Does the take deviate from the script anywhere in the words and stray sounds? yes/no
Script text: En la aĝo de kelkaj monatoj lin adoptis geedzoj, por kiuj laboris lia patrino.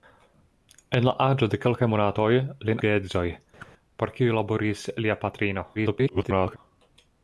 yes